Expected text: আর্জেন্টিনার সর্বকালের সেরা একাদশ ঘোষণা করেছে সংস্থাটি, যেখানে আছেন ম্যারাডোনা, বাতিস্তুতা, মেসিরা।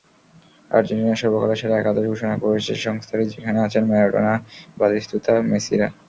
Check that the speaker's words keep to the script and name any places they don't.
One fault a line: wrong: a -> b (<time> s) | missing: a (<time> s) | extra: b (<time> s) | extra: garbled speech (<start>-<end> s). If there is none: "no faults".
no faults